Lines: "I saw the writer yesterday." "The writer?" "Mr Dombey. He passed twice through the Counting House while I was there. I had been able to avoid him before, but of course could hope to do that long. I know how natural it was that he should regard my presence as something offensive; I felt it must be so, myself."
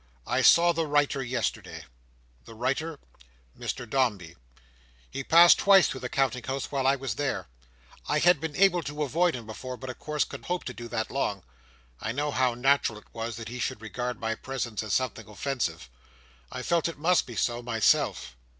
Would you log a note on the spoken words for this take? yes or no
no